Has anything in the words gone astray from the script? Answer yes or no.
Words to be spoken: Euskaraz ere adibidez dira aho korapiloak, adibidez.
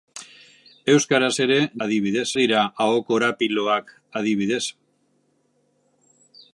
no